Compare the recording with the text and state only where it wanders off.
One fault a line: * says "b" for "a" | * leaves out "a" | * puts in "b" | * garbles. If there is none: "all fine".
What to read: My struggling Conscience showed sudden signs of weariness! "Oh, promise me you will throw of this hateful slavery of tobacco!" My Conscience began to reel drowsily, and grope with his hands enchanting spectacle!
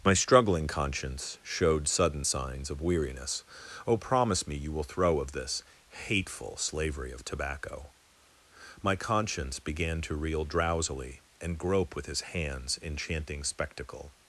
all fine